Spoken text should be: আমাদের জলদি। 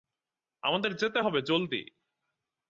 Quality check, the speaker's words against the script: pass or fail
fail